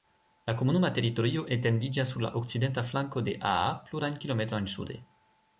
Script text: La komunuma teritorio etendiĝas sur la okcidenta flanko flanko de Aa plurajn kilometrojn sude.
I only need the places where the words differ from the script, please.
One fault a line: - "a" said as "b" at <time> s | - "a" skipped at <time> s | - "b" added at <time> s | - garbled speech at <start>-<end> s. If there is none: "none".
- "flanko" skipped at 3.2 s